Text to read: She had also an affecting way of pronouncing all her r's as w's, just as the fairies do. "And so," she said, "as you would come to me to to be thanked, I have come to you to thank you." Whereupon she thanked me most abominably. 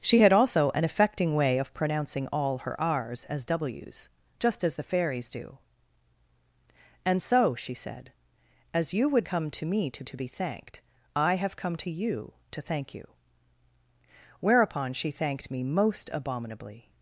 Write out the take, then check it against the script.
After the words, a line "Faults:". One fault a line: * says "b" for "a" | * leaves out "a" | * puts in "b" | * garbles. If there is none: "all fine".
She had also an affecting way of pronouncing all her r's as w's, just as the fairies do. "And so," she said, "as you would come to me to to be thanked, I have come to you to thank you." Whereupon she thanked me most abominably.
Faults:
all fine